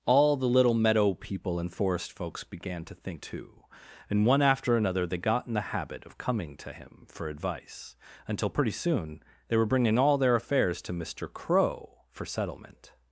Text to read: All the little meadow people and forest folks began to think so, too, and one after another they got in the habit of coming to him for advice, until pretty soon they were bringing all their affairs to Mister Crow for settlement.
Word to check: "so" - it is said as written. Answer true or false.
false